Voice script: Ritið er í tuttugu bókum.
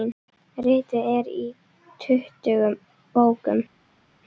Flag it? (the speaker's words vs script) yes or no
no